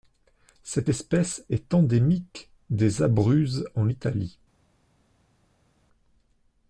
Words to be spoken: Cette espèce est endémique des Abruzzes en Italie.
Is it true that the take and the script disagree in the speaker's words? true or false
false